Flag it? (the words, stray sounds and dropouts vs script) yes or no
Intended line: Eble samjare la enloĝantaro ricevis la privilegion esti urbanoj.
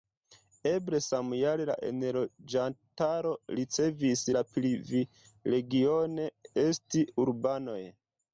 no